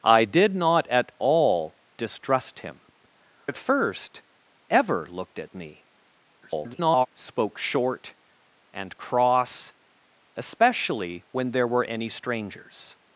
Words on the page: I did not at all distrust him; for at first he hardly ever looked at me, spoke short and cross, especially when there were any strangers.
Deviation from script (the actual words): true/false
true